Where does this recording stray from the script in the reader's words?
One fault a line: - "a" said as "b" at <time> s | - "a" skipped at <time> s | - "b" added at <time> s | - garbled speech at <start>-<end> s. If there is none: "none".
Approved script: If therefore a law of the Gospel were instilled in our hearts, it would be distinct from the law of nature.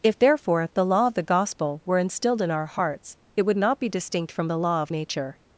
- "a" said as "the" at 0.7 s
- "not" added at 3.6 s